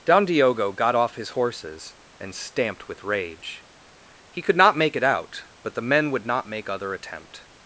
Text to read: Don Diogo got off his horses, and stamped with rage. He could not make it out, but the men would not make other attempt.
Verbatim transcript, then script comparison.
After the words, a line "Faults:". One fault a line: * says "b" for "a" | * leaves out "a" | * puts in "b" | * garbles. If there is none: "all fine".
Don Diogo got off his horses, and stamped with rage. He could not make it out, but the men would not make other attempt.
Faults:
all fine